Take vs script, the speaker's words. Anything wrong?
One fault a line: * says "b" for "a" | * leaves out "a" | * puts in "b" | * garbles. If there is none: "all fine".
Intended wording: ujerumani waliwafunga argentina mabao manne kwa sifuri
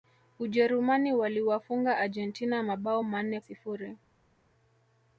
* leaves out "kwa"